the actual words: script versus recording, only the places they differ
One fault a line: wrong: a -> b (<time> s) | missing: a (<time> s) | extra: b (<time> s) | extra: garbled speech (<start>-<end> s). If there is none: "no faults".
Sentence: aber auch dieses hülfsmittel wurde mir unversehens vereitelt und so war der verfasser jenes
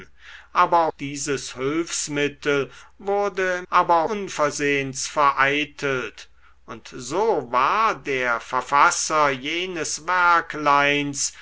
missing: auch (0.9 s)
wrong: mir -> aber (3.7 s)